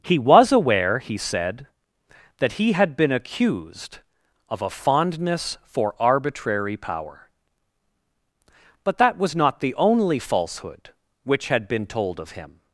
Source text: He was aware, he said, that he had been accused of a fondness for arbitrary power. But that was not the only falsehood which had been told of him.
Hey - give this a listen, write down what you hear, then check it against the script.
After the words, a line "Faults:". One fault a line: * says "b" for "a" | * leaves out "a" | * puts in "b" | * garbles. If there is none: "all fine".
He was aware, he said, that he had been accused of a fondness for arbitrary power. But that was not the only falsehood which had been told of him.
Faults:
all fine